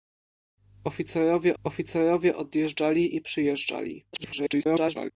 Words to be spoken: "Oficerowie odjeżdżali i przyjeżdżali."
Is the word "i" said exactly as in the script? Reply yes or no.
yes